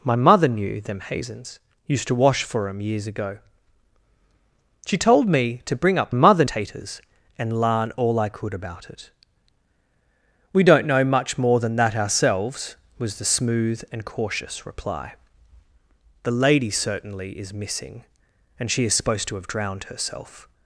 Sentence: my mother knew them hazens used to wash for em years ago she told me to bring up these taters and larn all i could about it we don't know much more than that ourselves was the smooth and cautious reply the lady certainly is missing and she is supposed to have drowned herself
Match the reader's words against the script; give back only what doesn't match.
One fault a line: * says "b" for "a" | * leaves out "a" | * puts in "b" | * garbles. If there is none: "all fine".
* says "mother" for "these"